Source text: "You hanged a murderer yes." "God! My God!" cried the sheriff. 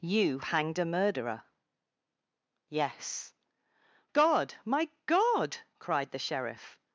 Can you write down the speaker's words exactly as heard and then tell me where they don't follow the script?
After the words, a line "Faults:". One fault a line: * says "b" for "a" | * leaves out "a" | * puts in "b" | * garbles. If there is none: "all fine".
"You hanged a murderer yes." "God! My God!" cried the sheriff.
Faults:
all fine